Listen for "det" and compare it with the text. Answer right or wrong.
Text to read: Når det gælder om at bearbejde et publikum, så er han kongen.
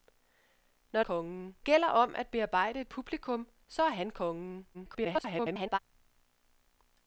wrong